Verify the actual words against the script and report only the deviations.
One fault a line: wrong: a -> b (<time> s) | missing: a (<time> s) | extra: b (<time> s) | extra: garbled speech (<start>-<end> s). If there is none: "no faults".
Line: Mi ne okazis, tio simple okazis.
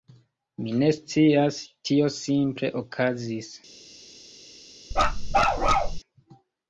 wrong: okazis -> scias (1.0 s)